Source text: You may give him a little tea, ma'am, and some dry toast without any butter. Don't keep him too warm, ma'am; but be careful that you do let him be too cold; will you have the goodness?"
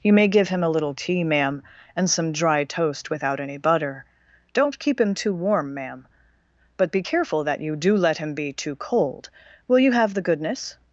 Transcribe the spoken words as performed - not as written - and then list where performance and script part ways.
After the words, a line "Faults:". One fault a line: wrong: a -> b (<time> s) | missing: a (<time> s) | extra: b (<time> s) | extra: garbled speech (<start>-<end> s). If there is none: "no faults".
You may give him a little tea, ma'am, and some dry toast without any butter. Don't keep him too warm, ma'am; but be careful that you do let him be too cold; will you have the goodness?"
Faults:
no faults